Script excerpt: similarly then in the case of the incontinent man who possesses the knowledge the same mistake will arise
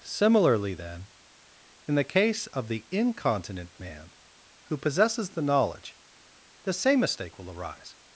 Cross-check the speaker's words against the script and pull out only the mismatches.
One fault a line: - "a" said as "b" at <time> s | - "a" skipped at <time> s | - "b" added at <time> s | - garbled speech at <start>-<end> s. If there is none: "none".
none